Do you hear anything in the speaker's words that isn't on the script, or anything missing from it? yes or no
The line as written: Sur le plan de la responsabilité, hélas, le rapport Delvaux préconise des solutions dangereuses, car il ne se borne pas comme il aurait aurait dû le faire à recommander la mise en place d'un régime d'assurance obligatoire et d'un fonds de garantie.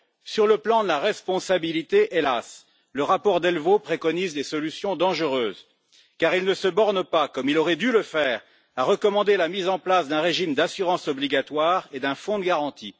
yes